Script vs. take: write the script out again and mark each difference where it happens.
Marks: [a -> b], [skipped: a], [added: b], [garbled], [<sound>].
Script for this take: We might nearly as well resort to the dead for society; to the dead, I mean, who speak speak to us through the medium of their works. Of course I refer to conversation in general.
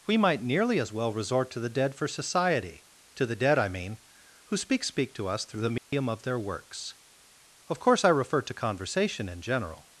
We might nearly as well resort to the dead for society; to the dead, I mean, who speak speak to us through the medium [dropout] of their works. Of course I refer to conversation in general.